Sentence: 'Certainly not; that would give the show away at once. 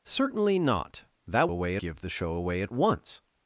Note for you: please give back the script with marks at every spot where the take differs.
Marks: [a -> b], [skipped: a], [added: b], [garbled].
'Certainly not; that [would -> away] give the show away at once.